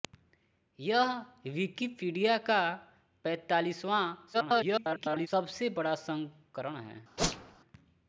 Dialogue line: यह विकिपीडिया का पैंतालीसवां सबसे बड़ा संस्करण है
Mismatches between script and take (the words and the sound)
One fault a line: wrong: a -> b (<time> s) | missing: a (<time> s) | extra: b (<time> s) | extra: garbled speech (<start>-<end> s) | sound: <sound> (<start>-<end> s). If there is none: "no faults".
extra: garbled speech (4.3-5.3 s)
sound: whoosh (7.2-7.6 s)